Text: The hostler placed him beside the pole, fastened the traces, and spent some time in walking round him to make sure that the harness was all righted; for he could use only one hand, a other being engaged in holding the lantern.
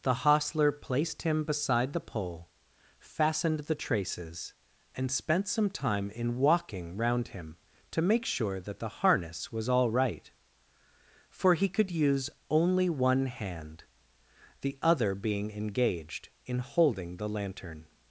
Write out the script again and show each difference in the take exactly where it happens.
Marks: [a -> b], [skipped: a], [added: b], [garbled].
The hostler placed him beside the pole, fastened the traces, and spent some time in walking round him to make sure that the harness was all [righted; -> right] for he could use only one hand, [a -> the] other being engaged in holding the lantern.